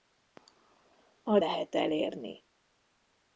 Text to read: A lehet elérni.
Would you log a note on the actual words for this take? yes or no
no